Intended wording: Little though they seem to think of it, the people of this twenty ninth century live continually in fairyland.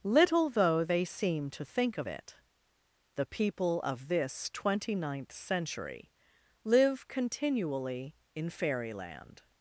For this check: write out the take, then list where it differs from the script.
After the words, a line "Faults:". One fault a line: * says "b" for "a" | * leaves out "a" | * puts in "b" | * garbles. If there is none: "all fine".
Little though they seem to think of it, the people of this twenty ninth century live continually in fairyland.
Faults:
all fine